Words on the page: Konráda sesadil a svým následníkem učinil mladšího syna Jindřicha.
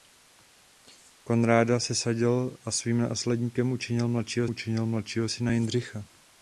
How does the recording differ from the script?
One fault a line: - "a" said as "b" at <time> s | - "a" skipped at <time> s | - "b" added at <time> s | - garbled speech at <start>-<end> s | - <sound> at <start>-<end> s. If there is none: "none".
- "učinil mladšího" added at 4.5 s